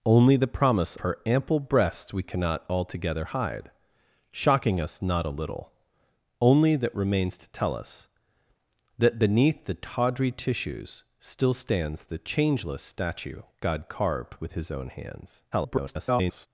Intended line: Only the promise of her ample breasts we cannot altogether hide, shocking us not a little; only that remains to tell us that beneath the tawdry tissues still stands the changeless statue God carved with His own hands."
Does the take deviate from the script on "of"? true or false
true